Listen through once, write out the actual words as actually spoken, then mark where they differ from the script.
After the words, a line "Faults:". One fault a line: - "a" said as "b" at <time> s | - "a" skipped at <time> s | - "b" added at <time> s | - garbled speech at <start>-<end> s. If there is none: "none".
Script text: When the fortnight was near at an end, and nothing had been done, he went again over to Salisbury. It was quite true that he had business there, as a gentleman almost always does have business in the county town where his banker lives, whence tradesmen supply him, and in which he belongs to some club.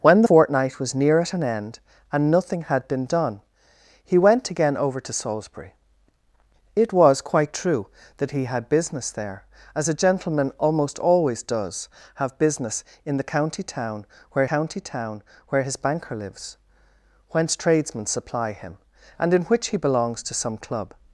When fortnight was near at an end, and nothing had been done, he went again over to Salisbury. It was quite true that he had business there, as a gentleman almost always does have business in the county town where county town where his banker lives, whence tradesmen supply him, and in which he belongs to some club.
Faults:
- "the" skipped at 0.2 s
- "county town where" added at 14.5 s